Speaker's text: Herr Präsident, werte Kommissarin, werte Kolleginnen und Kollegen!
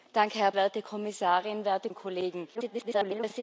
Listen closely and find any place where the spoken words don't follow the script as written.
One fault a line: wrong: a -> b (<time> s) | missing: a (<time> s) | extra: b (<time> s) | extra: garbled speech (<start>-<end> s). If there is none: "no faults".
missing: Präsident (0.5 s)
missing: Kolleginnen (1.9 s)
extra: garbled speech (2.5-3.4 s)